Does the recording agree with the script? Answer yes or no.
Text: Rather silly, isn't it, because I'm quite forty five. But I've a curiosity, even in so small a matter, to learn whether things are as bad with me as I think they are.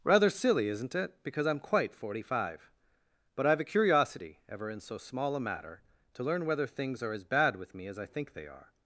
no